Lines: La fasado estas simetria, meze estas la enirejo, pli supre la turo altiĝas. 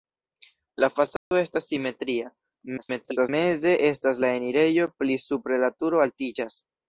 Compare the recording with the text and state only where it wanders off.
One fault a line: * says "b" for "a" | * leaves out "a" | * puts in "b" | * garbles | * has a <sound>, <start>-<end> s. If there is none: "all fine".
* has a dropout, 1.2-1.3 s
* garbles